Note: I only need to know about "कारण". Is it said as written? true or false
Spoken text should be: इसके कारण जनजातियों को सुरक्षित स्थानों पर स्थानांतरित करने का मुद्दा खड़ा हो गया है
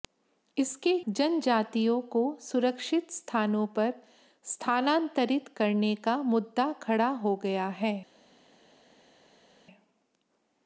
false